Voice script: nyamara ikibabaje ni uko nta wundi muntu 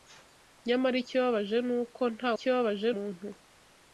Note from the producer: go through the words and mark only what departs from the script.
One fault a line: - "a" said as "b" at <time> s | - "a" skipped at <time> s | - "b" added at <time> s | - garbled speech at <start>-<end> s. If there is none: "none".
- "wundi" said as "ikibabaje" at 2.3 s